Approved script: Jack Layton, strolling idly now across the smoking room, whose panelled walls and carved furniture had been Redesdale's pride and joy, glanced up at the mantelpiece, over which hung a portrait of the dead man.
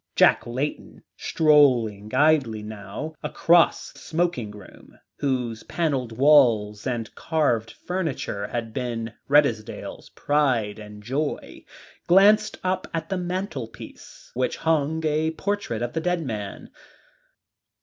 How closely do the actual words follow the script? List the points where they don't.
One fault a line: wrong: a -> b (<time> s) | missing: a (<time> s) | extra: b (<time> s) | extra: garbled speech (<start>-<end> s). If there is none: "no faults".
missing: the (3.9 s)
missing: over (14.3 s)